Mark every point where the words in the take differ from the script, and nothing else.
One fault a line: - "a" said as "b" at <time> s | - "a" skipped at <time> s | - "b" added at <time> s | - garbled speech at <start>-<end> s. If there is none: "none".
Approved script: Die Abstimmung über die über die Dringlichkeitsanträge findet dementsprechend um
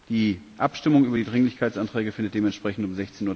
- "über die" skipped at 1.2 s